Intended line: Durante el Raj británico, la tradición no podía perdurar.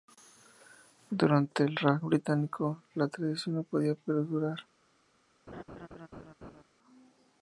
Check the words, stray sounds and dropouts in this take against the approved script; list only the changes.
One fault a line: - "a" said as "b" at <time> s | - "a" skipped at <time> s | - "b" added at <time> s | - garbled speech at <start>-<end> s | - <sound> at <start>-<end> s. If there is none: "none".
- laugh at 5.5-6.6 s